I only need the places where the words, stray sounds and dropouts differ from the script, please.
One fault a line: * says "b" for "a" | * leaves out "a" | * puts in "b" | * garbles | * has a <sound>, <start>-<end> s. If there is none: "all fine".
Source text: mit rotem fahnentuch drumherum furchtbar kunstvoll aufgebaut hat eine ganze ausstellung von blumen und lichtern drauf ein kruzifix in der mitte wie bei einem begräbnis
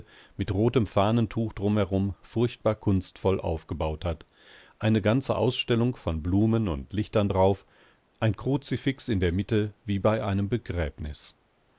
all fine